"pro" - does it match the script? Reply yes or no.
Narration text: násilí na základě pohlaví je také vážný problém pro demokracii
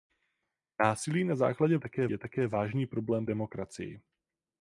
no